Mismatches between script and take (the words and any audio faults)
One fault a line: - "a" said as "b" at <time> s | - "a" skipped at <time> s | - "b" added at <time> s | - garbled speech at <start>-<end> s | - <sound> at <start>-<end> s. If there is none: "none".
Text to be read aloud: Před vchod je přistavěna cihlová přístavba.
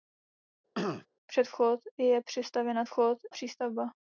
- throat clearing at 0.8-1.1 s
- "cihlová" said as "vchod" at 2.8 s